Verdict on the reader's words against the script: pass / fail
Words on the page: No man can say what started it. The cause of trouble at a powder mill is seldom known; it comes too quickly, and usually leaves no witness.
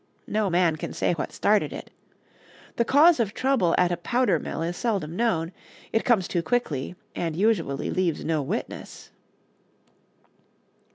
pass